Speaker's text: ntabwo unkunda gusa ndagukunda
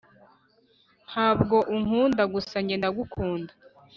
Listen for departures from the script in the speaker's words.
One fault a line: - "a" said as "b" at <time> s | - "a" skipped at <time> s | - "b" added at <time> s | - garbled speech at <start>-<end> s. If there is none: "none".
- "njye" added at 2.6 s